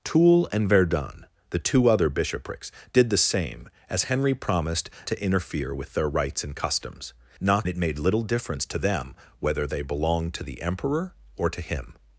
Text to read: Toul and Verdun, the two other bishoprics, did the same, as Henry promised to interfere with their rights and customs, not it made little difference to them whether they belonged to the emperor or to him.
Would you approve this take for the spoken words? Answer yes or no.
yes